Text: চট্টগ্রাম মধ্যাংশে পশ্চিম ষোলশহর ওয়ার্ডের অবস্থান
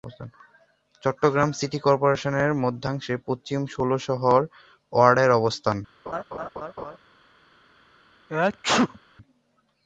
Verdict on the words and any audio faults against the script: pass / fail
fail